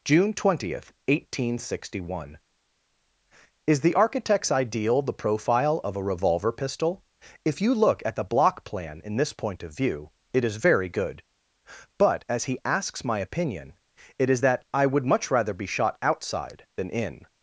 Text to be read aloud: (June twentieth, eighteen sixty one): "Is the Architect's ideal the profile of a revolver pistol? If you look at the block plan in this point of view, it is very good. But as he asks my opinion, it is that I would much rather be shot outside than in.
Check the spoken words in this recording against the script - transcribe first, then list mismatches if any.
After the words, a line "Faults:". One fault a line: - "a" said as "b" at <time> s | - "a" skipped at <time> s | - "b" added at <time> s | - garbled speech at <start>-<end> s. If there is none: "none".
(June twentieth, eighteen sixty one): "Is the Architect's ideal the profile of a revolver pistol? If you look at the block plan in this point of view, it is very good. But as he asks my opinion, it is that I would much rather be shot outside than in.
Faults:
none